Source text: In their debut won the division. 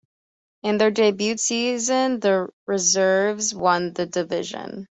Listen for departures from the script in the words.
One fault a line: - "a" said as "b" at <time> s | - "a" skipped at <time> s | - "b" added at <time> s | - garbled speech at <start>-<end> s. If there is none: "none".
- "season the reserves" added at 1.4 s